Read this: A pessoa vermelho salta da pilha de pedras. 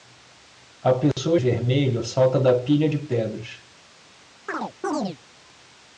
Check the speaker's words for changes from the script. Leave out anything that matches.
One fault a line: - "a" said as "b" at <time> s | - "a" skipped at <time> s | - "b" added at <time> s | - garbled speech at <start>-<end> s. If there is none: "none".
none